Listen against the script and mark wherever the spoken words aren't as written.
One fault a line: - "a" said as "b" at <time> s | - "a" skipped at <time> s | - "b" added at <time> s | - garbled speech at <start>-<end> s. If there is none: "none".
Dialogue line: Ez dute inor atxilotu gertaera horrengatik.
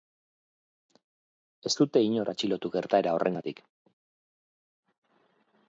none